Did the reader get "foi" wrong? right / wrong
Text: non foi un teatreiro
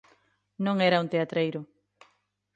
wrong